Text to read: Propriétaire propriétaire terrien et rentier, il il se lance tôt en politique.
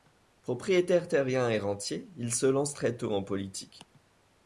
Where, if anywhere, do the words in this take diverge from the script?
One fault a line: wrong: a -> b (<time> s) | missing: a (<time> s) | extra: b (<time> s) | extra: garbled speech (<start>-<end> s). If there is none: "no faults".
missing: propriétaire (1.1 s)
missing: il (2.3 s)
extra: très (2.7 s)